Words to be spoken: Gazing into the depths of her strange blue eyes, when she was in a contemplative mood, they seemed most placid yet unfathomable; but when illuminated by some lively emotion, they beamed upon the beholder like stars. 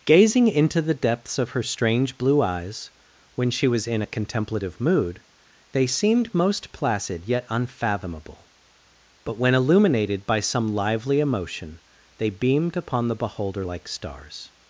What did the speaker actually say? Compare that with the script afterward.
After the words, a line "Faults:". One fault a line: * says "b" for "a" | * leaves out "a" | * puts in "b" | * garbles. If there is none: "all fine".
Gazing into the depths of her strange blue eyes, when she was in a contemplative mood, they seemed most placid yet unfathomable; but when illuminated by some lively emotion, they beamed upon the beholder like stars.
Faults:
all fine